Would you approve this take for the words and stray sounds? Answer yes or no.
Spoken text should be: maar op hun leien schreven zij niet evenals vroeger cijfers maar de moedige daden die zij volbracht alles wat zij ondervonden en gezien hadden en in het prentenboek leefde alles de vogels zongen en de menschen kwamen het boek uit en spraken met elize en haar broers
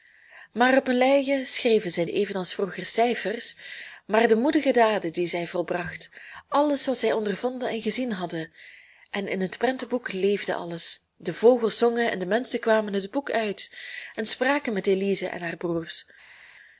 no